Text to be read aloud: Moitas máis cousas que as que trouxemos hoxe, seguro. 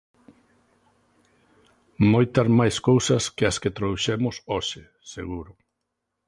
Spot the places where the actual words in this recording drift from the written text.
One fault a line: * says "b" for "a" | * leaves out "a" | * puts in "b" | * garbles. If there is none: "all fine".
all fine